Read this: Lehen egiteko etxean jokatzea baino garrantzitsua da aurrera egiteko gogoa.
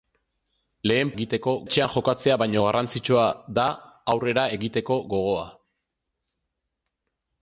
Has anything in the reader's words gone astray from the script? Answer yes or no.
no